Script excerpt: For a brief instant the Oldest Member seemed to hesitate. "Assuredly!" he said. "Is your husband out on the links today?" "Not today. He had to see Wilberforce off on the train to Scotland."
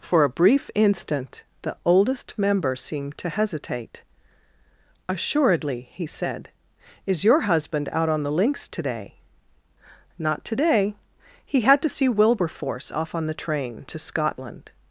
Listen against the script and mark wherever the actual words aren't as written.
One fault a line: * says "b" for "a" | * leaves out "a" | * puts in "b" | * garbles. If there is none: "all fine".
all fine